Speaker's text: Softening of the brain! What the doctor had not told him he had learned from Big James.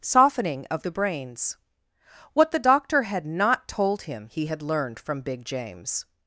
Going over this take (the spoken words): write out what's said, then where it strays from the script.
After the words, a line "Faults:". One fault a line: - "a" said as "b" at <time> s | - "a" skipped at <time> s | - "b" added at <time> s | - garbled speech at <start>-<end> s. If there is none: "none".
Softening of the brains! What the doctor had not told him he had learned from Big James.
Faults:
- "brain" said as "brains" at 0.9 s